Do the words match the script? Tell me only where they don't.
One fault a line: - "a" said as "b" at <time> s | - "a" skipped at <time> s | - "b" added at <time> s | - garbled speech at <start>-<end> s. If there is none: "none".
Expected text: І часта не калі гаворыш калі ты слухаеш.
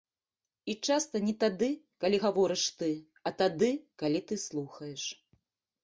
- "тады" added at 1.4 s
- "ты а тады" added at 2.8 s